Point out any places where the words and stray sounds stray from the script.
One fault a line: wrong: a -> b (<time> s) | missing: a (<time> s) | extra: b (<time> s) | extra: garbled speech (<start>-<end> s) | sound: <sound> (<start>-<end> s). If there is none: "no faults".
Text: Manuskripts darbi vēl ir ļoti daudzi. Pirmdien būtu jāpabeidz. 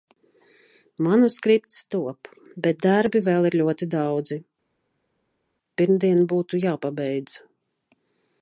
extra: top bet (2.0 s)